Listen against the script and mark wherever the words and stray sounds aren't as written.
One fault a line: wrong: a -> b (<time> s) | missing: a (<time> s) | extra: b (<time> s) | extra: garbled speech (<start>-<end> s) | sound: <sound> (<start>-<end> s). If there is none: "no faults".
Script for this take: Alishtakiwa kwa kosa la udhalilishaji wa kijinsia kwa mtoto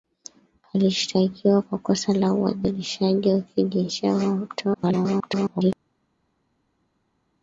extra: garbled speech (4.7-5.7 s)